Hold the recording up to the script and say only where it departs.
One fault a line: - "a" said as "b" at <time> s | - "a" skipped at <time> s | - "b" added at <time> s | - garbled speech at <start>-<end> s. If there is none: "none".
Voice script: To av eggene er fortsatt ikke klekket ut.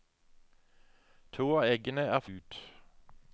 - "fortsatt ikke klekket" skipped at 2.2 s